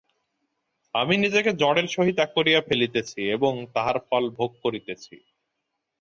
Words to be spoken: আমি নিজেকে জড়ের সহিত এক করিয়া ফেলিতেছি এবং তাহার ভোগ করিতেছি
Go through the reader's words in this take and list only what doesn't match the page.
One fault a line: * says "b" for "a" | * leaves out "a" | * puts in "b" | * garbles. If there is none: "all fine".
* puts in "ফল"